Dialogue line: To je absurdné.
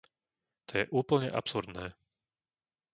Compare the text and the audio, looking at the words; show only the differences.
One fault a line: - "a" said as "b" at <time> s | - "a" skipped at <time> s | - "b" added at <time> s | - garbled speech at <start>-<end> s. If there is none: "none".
- "úplne" added at 0.9 s